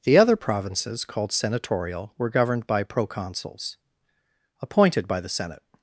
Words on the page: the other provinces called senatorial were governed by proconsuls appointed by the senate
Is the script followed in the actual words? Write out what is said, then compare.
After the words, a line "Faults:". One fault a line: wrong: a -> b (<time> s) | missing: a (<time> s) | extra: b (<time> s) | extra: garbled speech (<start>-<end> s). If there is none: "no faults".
the other provinces called senatorial were governed by proconsuls appointed by the senate
Faults:
no faults